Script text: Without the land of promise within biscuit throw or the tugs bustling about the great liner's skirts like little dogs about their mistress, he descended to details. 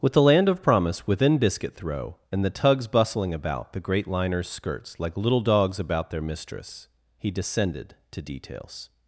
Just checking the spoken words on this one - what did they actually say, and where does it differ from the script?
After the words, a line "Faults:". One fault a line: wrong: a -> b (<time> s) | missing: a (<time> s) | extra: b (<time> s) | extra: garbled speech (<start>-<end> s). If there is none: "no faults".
With the land of promise within biscuit throw and the tugs bustling about the great liner's skirts like little dogs about their mistress, he descended to details.
Faults:
wrong: Without -> With (0.0 s)
wrong: or -> and (2.3 s)